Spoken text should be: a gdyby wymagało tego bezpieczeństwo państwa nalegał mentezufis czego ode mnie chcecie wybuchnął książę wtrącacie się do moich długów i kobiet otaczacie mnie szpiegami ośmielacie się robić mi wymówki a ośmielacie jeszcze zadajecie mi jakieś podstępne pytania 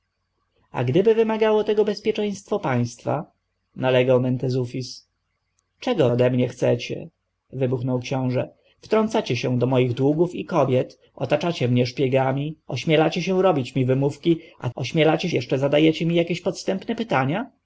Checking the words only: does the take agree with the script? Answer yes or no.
yes